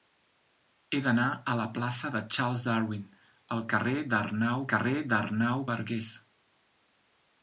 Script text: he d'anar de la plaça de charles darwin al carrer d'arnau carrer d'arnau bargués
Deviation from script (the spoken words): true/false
false